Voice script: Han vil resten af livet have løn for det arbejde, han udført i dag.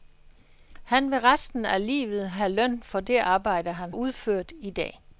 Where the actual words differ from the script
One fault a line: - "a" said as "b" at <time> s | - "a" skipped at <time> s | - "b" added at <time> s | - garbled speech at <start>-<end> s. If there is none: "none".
none